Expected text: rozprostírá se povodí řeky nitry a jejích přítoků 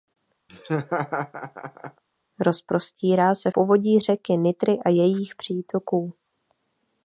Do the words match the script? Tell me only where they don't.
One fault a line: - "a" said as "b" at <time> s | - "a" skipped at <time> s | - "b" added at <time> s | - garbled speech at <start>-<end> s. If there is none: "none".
none